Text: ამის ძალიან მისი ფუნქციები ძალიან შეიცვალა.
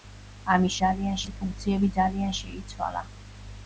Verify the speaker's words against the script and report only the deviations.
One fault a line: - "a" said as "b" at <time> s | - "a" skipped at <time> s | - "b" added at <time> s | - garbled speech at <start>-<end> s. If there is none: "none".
none